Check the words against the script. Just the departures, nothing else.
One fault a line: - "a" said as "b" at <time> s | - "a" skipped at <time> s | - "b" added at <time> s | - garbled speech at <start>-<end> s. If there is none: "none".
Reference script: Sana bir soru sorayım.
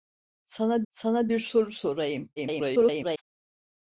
- "sana" added at 0.9 s
- garbled speech at 2.4-3.2 s